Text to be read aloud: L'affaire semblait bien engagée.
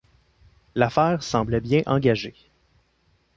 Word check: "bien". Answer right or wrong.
right